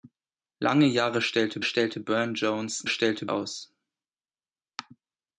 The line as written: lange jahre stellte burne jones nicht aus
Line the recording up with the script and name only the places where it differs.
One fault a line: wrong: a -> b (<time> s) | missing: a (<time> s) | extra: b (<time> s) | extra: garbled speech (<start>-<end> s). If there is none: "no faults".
extra: stellte (1.6 s)
wrong: nicht -> stellte (2.9 s)